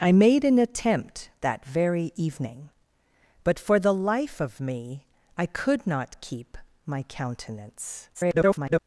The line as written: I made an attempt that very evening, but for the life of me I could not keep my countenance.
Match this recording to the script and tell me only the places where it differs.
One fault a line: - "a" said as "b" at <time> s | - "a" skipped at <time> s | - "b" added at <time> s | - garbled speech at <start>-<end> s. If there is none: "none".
- garbled speech at 8.1-8.8 s